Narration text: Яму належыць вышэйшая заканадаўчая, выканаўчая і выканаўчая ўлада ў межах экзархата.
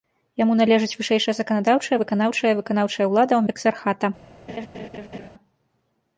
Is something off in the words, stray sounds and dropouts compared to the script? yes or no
yes